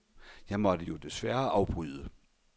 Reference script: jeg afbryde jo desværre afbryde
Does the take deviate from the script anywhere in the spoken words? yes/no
yes